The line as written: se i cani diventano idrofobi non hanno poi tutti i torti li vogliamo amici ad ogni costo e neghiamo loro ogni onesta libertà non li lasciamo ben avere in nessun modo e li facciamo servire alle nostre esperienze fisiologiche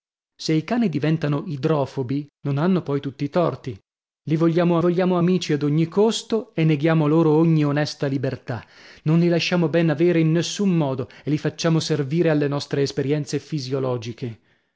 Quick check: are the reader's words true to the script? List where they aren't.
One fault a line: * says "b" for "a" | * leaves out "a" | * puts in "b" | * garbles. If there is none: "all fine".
* puts in "vogliamo"